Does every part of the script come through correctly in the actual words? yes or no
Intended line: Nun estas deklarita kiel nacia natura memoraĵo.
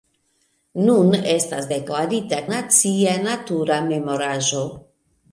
no